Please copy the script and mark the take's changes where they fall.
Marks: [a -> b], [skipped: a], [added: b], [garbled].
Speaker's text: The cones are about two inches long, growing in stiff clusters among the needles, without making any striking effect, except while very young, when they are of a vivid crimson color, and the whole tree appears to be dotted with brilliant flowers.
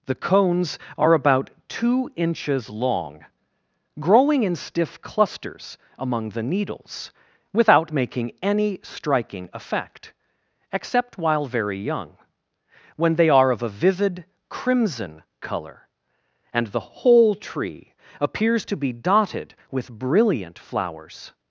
The cones are about two inches long, growing in stiff clusters among the needles, without making any striking effect, except while very young, when they are of a vivid crimson color, and the whole tree appears to be dotted with brilliant flowers.